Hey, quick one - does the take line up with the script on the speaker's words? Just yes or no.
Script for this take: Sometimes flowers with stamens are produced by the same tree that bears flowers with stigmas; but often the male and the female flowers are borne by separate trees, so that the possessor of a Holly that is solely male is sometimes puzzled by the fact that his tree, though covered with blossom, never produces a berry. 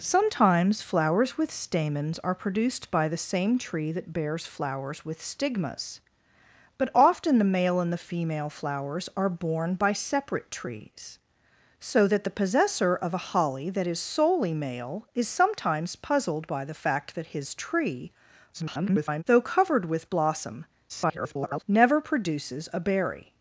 no